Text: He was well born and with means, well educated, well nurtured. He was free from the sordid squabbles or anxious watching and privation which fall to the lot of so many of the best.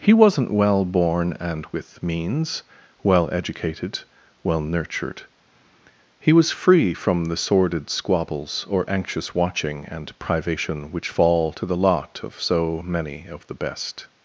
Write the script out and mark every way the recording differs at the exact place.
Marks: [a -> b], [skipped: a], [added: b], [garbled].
He [was -> wasn't] well born and with means, well educated, well nurtured. He was free from the sordid squabbles or anxious watching and privation which fall to the lot of so many of the best.